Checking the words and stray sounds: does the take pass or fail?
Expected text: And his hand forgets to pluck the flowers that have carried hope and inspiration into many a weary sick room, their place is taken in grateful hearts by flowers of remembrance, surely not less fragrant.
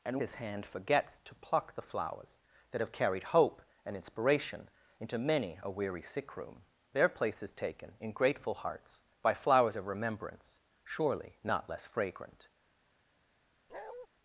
fail